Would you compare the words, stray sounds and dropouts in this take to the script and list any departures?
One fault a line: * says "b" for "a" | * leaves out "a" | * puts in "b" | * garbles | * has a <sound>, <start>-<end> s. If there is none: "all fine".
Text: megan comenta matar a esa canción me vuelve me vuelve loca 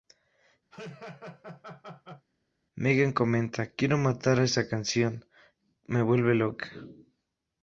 * has a laugh, 0.7-2.3 s
* puts in "quiero"
* leaves out "me vuelve"